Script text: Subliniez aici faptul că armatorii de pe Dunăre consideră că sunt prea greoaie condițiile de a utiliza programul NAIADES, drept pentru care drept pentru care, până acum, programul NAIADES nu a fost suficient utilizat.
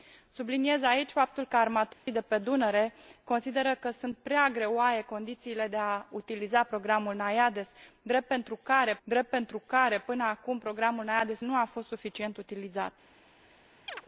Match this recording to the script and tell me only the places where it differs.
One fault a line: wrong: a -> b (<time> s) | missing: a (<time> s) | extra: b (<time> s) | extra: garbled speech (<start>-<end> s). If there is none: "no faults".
no faults